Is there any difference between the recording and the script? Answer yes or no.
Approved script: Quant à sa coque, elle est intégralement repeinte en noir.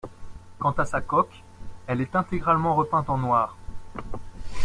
no